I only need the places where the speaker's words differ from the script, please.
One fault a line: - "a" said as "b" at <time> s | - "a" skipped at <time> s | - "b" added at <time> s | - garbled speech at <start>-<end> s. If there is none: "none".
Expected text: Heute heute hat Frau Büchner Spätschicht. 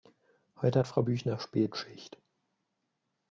- "heute" skipped at 0.8 s